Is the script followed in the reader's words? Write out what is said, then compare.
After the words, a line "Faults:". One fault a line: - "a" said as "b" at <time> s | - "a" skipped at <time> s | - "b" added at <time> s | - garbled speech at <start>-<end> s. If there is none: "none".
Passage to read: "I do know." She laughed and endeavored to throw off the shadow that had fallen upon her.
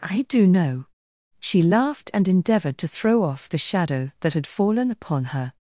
"I do know." She laughed and endeavored to throw off the shadow that had fallen upon her.
Faults:
none